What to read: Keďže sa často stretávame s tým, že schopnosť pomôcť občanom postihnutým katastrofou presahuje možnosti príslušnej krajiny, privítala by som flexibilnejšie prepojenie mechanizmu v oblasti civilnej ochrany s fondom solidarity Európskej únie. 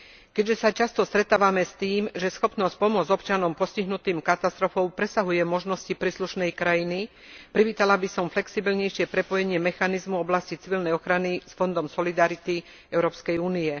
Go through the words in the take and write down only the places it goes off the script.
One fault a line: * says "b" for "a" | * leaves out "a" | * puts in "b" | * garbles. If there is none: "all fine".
all fine